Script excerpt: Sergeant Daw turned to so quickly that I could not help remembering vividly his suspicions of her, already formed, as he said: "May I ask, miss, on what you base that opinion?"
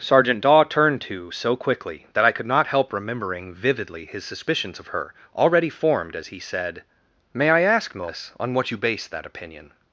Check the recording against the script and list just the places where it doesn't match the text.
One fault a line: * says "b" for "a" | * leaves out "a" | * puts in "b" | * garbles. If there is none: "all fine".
all fine